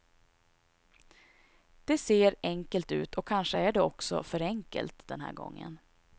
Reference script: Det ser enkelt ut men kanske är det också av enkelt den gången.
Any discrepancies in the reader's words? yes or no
yes